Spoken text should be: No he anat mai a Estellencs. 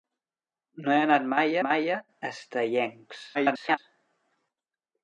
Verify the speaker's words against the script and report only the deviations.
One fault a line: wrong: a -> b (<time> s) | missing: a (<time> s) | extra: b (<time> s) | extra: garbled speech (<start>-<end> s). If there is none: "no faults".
extra: mai (1.7 s)
extra: garbled speech (3.3-3.8 s)